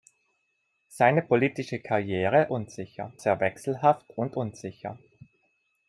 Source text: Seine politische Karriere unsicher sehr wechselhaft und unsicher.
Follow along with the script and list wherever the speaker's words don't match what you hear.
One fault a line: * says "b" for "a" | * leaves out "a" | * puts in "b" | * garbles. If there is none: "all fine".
all fine